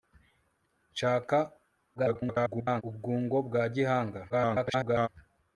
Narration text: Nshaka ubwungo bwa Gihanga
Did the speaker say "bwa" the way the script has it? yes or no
yes